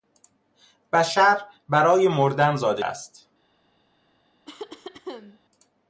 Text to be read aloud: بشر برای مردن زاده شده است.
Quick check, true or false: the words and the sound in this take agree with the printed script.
false